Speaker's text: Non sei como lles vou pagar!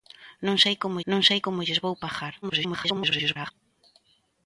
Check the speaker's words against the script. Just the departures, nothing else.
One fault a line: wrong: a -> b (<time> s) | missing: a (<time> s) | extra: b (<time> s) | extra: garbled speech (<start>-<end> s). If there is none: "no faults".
extra: non sei como (1.1 s)
extra: garbled speech (2.4-3.5 s)